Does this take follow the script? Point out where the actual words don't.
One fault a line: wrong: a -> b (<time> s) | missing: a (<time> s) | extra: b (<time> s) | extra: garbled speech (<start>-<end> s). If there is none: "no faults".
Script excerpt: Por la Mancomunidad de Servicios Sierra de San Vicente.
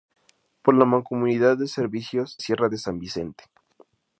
no faults